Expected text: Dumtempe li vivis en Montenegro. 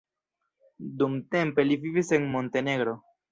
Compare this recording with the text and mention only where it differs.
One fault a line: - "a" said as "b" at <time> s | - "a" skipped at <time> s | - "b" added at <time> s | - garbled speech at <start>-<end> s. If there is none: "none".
none